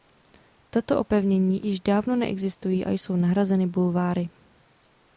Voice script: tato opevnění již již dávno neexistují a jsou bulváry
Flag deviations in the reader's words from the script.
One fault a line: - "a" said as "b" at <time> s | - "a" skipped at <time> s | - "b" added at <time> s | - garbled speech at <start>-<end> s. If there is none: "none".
- "již" skipped at 1.8 s
- "nahrazeny" added at 3.1 s